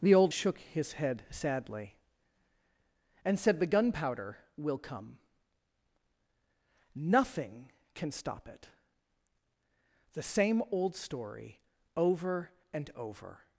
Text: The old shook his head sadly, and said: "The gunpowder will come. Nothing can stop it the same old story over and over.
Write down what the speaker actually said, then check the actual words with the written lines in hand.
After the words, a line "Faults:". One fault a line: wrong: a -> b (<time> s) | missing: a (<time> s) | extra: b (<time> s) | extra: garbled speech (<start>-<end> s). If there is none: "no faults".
The old shook his head sadly, and said: "The gunpowder will come. Nothing can stop it the same old story over and over.
Faults:
no faults